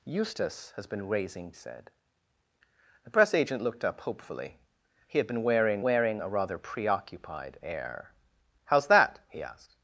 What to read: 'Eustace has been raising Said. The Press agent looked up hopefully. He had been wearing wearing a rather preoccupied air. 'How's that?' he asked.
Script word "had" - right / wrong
right